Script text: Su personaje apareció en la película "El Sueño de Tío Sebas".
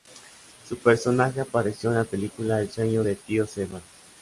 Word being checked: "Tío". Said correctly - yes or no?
yes